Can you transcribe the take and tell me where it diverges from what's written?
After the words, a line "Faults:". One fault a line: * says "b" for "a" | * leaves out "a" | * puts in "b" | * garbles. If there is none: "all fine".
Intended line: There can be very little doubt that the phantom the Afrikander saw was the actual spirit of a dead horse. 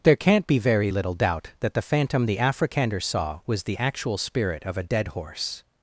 There can't be very little doubt that the phantom the Afrikander saw was the actual spirit of a dead horse.
Faults:
* says "can't" for "can"